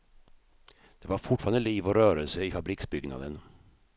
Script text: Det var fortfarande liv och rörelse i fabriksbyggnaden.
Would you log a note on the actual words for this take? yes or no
no